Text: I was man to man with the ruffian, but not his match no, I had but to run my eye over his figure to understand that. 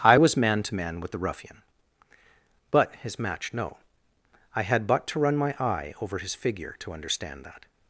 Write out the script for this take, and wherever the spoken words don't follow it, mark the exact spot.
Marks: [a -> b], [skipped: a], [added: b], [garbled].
I was man to man with the ruffian, but [skipped: not] his match no, I had but to run my eye over his figure to understand that.